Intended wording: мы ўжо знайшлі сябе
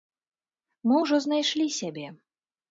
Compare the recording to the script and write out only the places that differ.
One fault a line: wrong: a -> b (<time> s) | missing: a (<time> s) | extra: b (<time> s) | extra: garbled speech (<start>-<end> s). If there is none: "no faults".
no faults